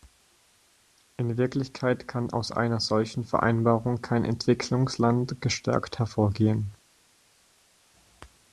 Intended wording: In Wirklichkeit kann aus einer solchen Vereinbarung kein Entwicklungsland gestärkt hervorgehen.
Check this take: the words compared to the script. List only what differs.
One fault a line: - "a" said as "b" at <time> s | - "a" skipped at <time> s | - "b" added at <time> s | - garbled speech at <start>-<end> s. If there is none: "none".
none